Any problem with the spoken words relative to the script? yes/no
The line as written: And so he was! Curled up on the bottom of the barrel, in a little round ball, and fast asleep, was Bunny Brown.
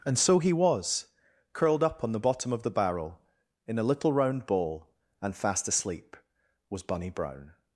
no